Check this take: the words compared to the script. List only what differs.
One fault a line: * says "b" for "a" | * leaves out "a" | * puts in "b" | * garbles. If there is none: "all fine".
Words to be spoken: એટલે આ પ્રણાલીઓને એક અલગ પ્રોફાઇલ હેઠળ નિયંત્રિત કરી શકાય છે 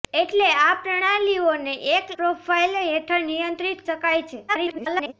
* leaves out "અલગ"
* leaves out "કરી"
* garbles